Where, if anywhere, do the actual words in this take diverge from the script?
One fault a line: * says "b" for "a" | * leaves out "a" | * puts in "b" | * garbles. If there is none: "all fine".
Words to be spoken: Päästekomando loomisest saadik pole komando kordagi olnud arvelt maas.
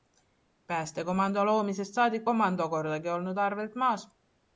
* leaves out "pole"